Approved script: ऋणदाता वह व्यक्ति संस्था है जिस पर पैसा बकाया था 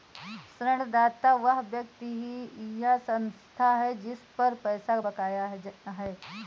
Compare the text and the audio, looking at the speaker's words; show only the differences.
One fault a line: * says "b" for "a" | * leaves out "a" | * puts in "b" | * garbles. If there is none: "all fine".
* puts in "या"
* says "है" for "था"